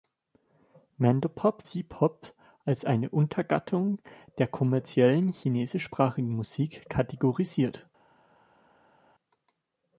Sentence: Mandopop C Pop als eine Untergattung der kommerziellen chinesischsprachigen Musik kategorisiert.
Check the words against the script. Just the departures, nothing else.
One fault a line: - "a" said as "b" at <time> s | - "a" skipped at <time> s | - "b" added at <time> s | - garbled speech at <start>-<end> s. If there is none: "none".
none